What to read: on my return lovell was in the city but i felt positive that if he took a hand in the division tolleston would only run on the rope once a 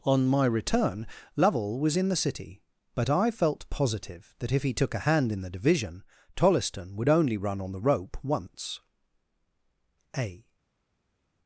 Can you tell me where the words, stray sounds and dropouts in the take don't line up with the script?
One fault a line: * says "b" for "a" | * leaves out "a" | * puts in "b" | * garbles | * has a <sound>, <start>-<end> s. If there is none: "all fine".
all fine